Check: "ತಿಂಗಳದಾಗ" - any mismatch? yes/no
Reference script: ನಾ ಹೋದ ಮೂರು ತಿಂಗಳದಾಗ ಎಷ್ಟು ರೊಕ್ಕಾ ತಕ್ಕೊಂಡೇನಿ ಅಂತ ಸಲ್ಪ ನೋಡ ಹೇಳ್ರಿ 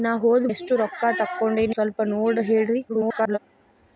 yes